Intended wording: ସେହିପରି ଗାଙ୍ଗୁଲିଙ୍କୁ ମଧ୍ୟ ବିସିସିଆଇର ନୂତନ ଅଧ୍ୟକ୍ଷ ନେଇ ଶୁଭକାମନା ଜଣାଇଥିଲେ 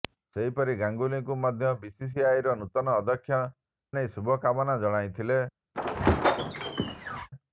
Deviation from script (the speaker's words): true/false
false